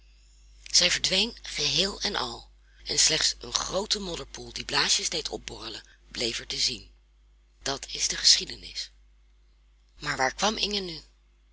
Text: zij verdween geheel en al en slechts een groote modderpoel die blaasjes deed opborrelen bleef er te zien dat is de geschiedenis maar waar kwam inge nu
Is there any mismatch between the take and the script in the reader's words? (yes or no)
no